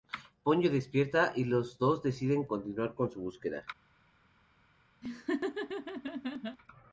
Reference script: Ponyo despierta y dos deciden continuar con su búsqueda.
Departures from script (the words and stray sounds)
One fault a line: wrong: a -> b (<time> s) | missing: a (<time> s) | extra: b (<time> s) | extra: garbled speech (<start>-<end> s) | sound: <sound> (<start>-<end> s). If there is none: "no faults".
extra: los (1.4 s)
sound: laugh (5.0-6.6 s)